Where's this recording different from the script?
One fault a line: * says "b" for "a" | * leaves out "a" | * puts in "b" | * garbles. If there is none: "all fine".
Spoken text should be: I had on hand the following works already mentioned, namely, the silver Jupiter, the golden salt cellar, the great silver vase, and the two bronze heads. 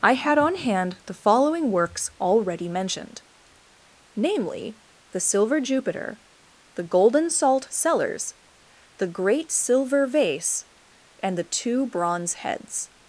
* says "cellars" for "cellar"